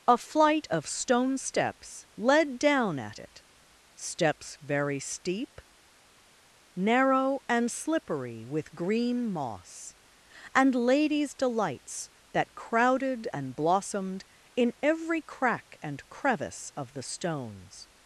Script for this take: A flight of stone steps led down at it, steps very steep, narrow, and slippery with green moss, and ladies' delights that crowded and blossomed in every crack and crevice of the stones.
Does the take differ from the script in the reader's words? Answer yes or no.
no